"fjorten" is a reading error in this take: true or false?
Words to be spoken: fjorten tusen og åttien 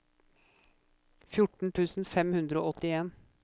false